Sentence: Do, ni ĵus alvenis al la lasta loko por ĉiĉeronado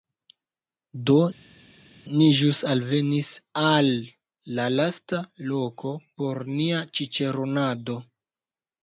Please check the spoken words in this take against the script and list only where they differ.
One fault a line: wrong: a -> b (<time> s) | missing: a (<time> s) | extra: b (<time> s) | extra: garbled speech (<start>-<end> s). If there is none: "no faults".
extra: nia (6.6 s)